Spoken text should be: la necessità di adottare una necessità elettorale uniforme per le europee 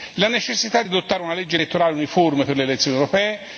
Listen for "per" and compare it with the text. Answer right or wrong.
right